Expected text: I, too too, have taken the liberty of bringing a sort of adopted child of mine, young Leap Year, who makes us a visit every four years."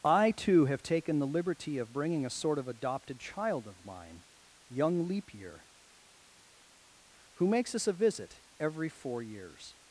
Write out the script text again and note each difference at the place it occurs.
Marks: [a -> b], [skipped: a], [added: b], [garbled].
I, too [skipped: too,] have taken the liberty of bringing a sort of adopted child of mine, young Leap Year, who makes us a visit every four years."